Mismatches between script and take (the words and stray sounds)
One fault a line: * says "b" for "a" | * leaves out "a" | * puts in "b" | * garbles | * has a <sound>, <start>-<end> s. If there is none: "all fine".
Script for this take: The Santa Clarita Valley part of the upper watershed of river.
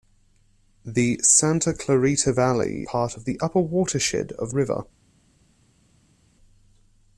all fine